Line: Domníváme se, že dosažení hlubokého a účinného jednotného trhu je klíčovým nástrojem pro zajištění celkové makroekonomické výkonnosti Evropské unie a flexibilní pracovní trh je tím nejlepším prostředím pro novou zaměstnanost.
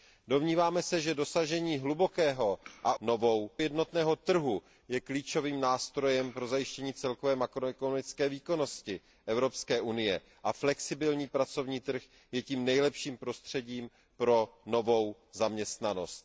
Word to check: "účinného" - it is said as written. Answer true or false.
false